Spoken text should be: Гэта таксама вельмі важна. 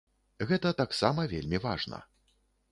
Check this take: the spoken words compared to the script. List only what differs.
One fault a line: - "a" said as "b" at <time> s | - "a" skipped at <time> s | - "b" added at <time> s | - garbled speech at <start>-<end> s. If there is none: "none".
none